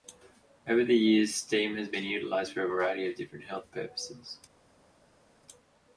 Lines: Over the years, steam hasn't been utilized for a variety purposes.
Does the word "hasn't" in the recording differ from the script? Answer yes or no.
yes